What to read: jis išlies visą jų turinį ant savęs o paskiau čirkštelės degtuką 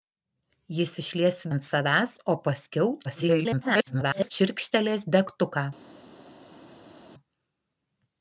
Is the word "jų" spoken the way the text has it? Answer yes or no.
no